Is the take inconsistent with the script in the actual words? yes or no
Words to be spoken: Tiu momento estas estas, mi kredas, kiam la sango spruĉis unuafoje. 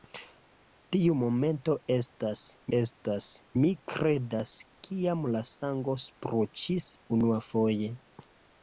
no